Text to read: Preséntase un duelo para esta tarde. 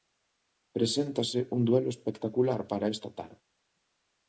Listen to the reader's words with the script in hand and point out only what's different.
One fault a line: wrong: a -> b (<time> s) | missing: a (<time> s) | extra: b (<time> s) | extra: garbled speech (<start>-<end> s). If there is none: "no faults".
extra: espectacular (1.9 s)